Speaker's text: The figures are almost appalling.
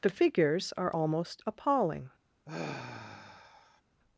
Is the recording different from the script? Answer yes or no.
no